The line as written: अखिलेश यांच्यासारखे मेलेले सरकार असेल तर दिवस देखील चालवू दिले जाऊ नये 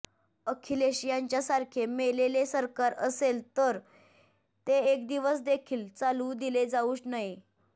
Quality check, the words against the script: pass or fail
fail